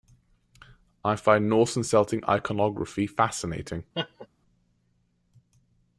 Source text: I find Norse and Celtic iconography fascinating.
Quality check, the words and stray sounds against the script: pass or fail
fail